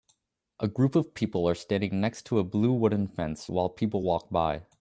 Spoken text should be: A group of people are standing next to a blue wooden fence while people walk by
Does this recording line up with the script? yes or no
yes